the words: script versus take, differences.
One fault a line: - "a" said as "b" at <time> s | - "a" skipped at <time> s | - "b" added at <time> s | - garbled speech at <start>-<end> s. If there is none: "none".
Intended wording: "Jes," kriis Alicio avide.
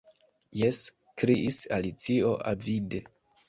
none